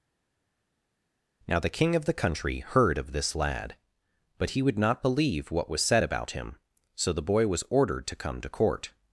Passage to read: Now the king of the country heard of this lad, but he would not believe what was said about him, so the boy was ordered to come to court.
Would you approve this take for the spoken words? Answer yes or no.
yes